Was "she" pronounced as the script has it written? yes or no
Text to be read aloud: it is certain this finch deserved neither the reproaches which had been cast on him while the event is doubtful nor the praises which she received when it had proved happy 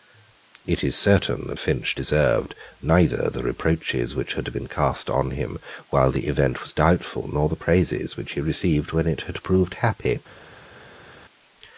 no